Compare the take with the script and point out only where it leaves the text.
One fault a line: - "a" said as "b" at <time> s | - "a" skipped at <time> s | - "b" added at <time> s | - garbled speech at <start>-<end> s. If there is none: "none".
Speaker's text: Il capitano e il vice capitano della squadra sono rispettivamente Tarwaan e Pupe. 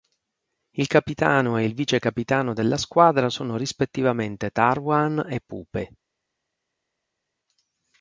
none